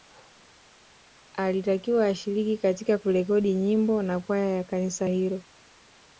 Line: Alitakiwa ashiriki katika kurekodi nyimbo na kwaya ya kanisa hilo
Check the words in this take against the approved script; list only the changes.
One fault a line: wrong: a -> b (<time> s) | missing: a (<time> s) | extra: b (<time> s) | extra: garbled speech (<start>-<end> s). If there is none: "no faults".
no faults